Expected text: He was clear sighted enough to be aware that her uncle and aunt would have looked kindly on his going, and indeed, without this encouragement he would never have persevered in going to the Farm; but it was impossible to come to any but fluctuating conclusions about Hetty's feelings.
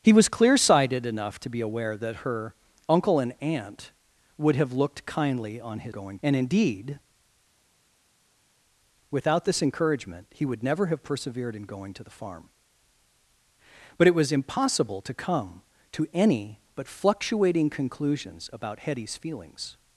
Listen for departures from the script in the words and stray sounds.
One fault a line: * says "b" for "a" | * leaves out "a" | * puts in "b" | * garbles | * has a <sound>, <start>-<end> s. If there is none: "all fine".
all fine